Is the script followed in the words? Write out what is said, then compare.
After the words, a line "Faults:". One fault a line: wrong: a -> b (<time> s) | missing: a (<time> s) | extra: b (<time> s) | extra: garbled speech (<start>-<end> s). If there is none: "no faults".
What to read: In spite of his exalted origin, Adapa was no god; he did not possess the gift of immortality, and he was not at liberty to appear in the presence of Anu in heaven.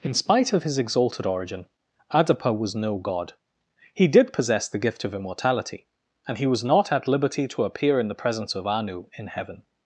In spite of his exalted origin, Adapa was no god; he did possess the gift of immortality, and he was not at liberty to appear in the presence of Anu in heaven.
Faults:
missing: not (4.3 s)